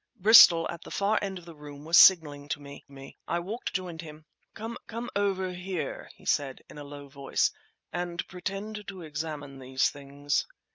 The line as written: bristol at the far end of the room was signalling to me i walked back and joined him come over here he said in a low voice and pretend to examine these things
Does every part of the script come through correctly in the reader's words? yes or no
no